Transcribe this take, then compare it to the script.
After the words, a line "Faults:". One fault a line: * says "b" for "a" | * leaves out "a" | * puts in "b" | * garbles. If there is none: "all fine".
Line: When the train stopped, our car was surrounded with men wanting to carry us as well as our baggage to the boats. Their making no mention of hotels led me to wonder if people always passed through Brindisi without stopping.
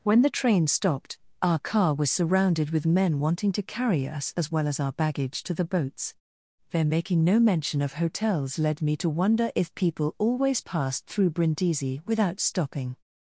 When the train stopped, our car was surrounded with men wanting to carry us as well as our baggage to the boats. Their making no mention of hotels led me to wonder if people always passed through Brindisi without stopping.
Faults:
all fine